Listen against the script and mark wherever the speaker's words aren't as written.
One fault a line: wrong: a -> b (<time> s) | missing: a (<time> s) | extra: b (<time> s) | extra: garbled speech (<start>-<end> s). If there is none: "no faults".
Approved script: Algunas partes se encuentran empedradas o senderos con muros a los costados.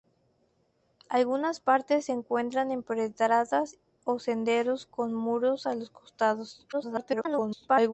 extra: garbled speech (6.7-7.9 s)